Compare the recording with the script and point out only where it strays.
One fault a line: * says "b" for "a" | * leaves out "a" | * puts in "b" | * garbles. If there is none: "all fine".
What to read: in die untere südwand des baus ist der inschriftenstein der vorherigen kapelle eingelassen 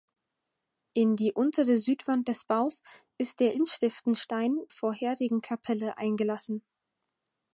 * leaves out "der"